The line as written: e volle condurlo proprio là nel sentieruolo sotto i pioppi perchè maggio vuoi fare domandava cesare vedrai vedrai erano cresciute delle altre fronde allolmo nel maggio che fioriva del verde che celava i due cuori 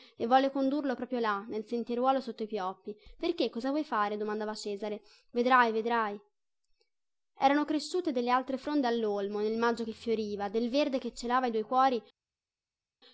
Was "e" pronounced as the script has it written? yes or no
yes